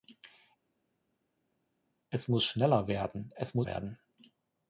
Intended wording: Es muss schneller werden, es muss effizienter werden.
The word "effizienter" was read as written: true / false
false